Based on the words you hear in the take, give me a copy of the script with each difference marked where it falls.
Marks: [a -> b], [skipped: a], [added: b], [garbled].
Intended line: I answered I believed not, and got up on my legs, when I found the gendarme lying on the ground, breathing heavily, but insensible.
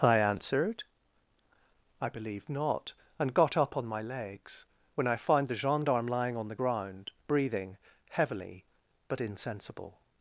I answered I believed not, and got up on my legs, when I found the gendarme lying on the ground, breathing heavily, but insensible.